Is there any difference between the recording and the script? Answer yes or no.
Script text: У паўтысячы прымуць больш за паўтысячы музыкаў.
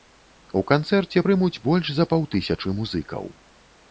yes